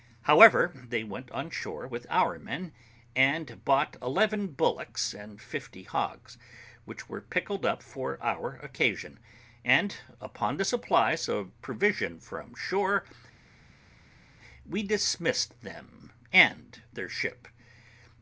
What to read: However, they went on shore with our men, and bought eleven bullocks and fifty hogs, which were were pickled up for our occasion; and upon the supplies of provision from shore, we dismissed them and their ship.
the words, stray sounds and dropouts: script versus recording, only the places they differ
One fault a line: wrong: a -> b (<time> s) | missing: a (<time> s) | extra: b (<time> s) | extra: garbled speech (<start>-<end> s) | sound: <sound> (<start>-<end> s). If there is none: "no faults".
missing: were (7.2 s)